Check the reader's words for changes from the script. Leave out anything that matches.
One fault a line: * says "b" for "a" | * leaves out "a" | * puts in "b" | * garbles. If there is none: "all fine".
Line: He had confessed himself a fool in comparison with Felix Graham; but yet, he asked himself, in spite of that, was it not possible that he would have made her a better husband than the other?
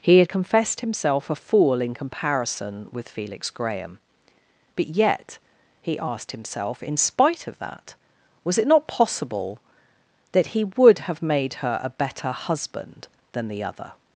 all fine